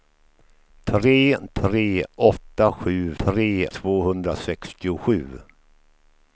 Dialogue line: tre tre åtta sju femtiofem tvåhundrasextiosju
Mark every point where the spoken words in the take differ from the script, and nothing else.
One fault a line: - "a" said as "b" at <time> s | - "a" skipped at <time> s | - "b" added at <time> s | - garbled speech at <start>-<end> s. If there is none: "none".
- "femtiofem" said as "tre" at 3.2 s